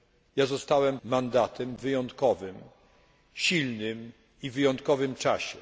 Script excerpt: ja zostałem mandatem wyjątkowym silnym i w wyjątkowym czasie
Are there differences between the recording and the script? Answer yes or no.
no